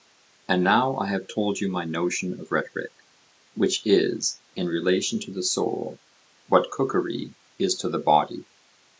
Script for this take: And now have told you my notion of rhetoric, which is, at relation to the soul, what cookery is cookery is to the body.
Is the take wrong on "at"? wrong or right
wrong